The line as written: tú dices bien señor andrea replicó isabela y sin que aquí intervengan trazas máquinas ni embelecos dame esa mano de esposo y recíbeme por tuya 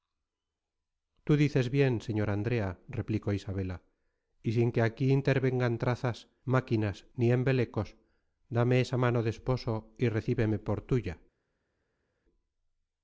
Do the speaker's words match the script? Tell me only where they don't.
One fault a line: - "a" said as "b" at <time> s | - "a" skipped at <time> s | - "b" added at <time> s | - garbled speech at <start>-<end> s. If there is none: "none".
none